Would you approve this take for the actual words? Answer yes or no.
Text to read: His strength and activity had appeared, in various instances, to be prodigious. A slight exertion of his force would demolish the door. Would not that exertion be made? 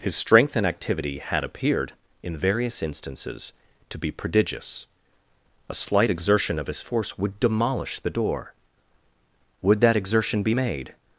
no